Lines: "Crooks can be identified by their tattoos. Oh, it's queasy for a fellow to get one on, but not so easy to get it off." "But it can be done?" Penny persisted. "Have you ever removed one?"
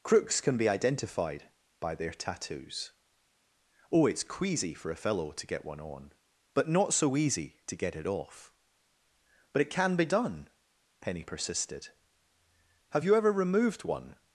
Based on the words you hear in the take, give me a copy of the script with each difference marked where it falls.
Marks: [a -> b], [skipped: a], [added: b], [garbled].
"Crooks can be identified by their tattoos. Oh, it's queasy for a fellow to get one on, but not so easy to get it off." "But it can be done?" Penny persisted. "Have you ever removed one?"